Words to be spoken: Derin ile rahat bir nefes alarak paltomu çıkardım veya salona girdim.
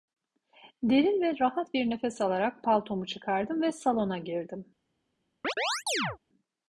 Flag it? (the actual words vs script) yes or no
yes